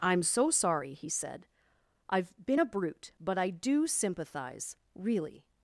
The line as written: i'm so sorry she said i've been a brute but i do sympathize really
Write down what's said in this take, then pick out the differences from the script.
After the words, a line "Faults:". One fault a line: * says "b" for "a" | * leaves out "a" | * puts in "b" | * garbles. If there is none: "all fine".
i'm so sorry he said i've been a brute but i do sympathize really
Faults:
* says "he" for "she"